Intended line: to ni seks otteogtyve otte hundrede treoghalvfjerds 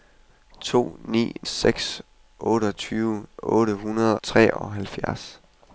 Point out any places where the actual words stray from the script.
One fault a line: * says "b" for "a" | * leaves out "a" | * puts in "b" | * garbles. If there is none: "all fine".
all fine